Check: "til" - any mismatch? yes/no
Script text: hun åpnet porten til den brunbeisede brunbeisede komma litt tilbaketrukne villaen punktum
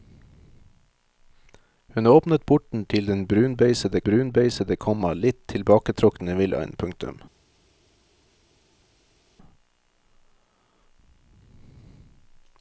no